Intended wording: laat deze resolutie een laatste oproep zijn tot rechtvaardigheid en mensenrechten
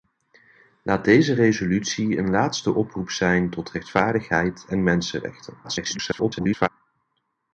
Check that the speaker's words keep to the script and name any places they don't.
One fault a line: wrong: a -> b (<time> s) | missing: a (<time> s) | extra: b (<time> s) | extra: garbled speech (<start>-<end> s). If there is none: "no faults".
extra: garbled speech (5.6-6.7 s)